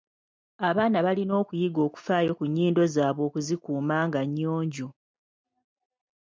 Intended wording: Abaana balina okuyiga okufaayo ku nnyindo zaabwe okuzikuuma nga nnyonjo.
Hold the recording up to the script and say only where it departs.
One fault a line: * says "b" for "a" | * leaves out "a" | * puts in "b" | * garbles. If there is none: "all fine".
all fine